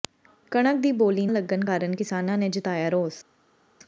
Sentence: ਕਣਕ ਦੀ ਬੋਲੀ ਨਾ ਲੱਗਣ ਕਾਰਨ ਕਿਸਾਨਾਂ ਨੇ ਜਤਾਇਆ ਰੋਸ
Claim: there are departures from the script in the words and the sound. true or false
true